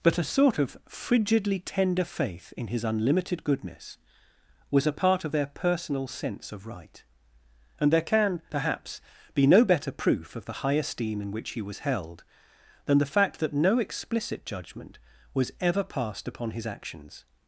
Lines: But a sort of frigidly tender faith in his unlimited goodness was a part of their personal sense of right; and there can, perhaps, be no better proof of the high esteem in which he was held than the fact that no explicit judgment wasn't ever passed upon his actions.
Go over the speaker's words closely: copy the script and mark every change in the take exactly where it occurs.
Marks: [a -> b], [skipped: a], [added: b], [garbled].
But a sort of frigidly tender faith in his unlimited goodness was a part of their personal sense of right; and there can, perhaps, be no better proof of the high esteem in which he was held than the fact that no explicit judgment [wasn't -> was] ever passed upon his actions.